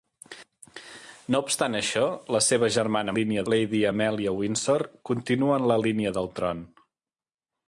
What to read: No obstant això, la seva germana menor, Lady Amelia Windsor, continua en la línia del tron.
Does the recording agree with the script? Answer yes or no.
no